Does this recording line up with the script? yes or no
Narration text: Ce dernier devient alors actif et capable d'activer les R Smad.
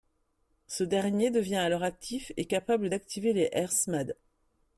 yes